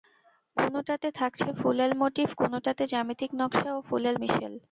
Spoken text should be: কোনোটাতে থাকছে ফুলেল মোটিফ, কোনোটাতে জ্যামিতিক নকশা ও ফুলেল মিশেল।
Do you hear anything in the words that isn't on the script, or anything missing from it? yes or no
no